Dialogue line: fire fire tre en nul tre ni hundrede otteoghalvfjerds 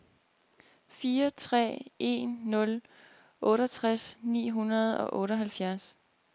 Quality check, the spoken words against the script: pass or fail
fail